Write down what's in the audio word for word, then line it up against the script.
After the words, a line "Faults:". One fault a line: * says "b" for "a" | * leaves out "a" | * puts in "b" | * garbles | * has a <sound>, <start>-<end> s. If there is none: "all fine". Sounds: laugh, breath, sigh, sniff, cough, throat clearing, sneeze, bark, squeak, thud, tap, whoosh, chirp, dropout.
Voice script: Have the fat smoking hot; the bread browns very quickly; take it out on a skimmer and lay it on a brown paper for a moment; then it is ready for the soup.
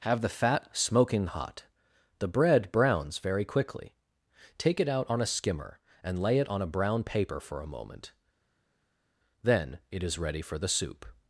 Have the fat smoking hot; the bread browns very quickly; take it out on a skimmer and lay it on a brown paper for a moment; then it is ready for the soup.
Faults:
all fine